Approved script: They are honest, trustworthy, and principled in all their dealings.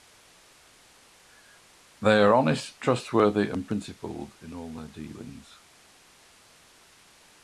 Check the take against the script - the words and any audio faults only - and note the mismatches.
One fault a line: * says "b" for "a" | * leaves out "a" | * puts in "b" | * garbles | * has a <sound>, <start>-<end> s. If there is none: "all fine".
all fine